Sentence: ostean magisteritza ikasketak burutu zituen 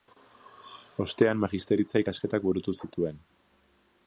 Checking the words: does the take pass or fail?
pass